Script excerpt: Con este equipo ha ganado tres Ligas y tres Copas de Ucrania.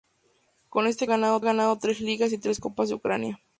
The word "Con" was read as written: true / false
true